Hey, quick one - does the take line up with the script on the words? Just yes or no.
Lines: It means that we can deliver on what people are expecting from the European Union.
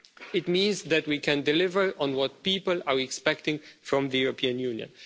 yes